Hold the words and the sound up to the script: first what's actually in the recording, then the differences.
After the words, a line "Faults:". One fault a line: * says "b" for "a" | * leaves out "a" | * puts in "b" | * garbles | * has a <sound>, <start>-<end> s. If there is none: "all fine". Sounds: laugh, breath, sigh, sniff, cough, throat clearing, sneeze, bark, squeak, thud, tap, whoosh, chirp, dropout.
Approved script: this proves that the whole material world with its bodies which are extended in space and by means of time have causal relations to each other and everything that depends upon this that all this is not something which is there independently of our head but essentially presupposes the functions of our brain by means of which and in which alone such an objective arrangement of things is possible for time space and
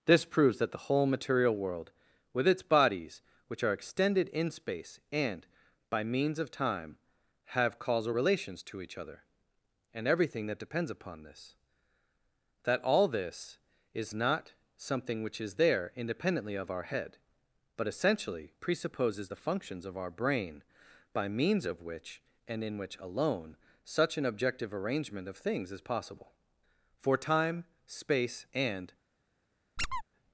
this proves that the whole material world with its bodies which are extended in space and by means of time have causal relations to each other and everything that depends upon this that all this is not something which is there independently of our head but essentially presupposes the functions of our brain by means of which and in which alone such an objective arrangement of things is possible for time space and
Faults:
* has a squeak, 29.8-30.0 s